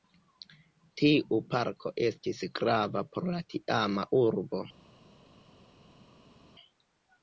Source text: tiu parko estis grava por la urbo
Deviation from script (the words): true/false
true